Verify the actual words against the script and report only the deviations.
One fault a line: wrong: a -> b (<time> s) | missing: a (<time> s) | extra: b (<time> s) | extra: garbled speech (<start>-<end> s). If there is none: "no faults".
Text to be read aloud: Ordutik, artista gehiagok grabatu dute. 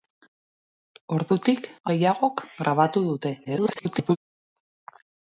missing: artista (1.7 s)
extra: garbled speech (3.4-4.2 s)